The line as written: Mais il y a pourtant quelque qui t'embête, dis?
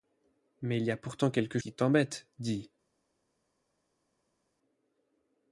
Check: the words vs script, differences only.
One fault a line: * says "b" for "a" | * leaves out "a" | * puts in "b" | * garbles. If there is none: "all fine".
all fine